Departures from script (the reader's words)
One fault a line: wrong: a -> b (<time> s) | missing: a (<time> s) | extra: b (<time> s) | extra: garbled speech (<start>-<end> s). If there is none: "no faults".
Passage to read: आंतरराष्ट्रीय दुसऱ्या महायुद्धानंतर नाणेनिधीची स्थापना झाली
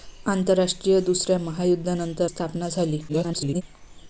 missing: नाणेनिधीची (2.3 s)
extra: garbled speech (3.1-3.6 s)